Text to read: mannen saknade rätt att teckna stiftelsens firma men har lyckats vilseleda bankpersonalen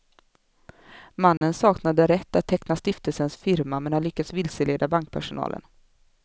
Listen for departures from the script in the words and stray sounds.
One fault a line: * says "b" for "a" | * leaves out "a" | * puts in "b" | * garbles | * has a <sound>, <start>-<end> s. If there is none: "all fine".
* has a dropout, 1.4-1.4 s